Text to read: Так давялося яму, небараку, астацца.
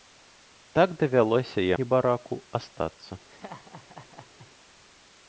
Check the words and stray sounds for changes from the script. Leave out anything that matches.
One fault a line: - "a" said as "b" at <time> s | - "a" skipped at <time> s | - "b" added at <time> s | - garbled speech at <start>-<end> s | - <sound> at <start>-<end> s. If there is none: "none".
- "яму" skipped at 1.7 s
- laugh at 3.3-4.5 s